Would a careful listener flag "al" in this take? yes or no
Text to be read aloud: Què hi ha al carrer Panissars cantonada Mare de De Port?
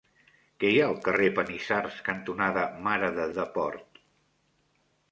no